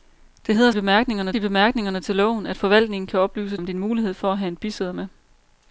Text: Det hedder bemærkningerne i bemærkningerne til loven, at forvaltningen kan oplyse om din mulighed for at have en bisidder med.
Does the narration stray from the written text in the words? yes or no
no